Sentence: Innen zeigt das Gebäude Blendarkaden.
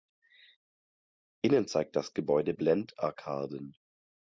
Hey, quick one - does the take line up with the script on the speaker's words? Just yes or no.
yes